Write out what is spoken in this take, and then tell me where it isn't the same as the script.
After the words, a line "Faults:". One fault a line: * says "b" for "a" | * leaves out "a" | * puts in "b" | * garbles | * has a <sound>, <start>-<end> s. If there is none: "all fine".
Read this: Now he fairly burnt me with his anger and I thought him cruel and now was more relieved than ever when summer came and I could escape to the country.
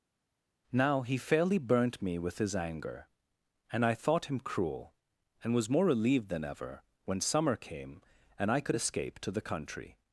Now he fairly burnt me with his anger and I thought him cruel and was more relieved than ever when summer came and I could escape to the country.
Faults:
* leaves out "now"